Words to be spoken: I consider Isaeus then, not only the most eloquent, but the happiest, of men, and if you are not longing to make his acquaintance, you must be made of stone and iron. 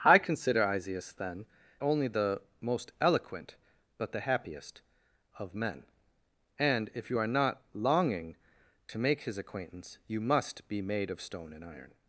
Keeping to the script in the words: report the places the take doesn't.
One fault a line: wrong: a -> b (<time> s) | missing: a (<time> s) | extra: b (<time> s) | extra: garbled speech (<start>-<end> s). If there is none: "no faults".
missing: not (1.4 s)